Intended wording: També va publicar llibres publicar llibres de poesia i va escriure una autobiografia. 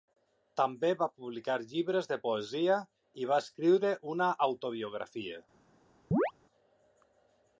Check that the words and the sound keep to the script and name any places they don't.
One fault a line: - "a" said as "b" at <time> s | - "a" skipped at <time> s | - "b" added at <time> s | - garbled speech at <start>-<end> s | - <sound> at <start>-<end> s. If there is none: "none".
- "publicar llibres" skipped at 2.1 s
- chirp at 6.1-6.3 s